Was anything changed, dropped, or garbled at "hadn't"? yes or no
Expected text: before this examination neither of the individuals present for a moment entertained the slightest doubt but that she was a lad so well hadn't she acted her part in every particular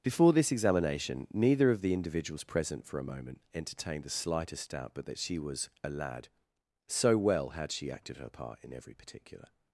yes